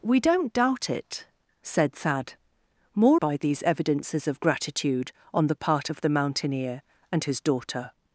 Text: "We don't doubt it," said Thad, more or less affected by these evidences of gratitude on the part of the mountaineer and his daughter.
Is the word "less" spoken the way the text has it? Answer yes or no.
no